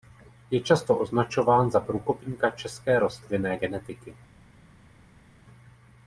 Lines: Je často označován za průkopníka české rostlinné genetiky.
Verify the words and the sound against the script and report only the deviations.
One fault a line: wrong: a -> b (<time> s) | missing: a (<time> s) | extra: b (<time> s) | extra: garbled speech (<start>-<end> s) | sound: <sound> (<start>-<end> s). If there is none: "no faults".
no faults